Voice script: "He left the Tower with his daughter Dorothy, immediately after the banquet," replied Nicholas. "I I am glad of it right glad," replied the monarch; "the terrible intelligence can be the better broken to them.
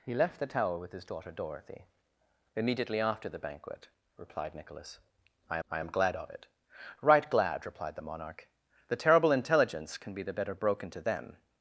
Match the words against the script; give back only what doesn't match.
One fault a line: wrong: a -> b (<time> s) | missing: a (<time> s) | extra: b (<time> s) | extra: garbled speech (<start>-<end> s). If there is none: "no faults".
no faults